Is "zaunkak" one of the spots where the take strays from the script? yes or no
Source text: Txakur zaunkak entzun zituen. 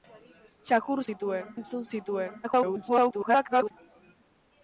yes